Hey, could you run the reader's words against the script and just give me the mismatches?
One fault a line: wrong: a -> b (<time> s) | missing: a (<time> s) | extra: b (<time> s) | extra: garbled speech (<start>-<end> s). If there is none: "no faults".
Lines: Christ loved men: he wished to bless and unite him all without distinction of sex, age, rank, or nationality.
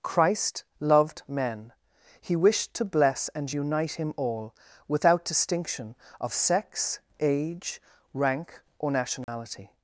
no faults